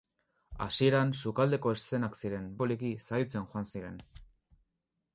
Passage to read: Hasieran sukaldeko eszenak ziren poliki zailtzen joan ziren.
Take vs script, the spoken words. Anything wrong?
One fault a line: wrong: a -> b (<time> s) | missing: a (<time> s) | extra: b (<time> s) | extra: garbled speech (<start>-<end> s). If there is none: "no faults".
no faults